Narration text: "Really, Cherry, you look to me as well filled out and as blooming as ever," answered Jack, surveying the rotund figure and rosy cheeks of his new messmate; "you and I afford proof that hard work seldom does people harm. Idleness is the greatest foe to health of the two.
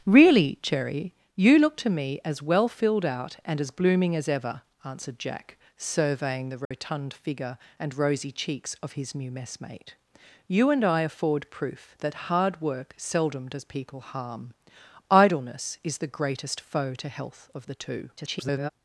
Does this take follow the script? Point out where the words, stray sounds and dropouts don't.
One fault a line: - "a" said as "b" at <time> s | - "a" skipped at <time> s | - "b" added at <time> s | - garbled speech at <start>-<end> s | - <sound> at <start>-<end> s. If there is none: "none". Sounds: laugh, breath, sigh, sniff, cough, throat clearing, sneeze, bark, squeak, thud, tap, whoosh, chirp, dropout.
- dropout at 6.6-6.7 s
- garbled speech at 18.2-18.7 s